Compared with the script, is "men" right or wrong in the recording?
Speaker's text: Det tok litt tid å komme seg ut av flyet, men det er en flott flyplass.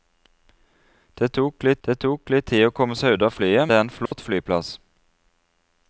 wrong